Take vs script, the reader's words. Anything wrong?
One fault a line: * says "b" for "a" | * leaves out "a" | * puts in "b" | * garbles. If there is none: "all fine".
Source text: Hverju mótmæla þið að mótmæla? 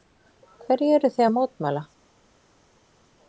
* says "eruð" for "mótmæla"